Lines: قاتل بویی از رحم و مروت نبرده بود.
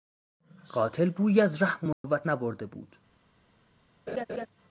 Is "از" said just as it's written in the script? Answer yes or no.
yes